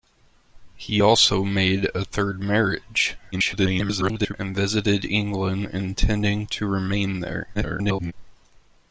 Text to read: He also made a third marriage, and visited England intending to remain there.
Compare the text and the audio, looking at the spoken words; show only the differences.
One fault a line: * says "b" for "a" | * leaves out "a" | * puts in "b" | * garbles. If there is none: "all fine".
* garbles
* garbles